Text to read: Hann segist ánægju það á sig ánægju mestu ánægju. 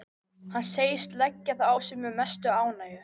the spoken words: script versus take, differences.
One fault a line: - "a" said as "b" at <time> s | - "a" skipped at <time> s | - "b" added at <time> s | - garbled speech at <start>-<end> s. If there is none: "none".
- "ánægju" said as "leggja" at 1.2 s
- "ánægju" said as "með" at 2.0 s